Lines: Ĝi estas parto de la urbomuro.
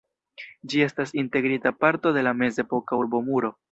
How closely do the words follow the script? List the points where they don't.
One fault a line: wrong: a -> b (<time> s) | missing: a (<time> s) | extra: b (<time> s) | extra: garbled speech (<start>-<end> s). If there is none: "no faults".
extra: integrita (1.2 s)
extra: mezepoka (2.4 s)